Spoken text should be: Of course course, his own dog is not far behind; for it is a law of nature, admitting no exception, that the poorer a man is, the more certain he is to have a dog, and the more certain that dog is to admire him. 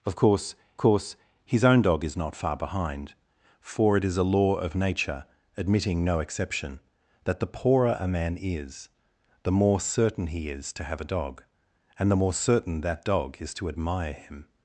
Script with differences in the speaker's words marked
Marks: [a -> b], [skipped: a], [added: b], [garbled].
Of course course, his own dog is not far behind; for it is a law of nature, admitting no exception, that the poorer a man is, the more certain he is to have a dog, and the more certain that dog is to admire him.